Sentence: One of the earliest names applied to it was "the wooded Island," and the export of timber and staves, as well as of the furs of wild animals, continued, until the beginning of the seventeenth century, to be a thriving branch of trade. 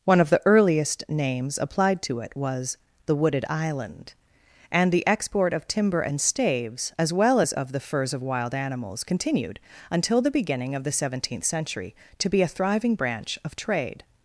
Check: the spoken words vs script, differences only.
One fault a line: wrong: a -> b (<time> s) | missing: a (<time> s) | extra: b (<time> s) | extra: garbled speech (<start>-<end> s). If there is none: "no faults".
no faults